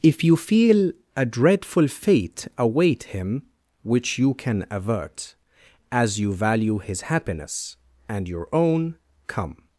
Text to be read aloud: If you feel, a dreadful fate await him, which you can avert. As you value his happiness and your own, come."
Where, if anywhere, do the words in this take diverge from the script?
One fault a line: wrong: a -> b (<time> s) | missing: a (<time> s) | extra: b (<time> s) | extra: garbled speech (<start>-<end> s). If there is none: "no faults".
no faults